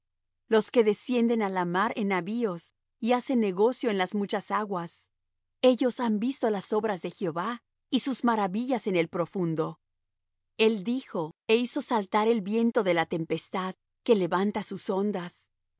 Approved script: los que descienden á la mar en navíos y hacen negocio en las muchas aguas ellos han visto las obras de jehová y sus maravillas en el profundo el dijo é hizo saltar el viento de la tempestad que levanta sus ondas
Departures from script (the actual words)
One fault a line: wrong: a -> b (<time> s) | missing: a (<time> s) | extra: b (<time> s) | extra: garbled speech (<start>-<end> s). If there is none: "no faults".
no faults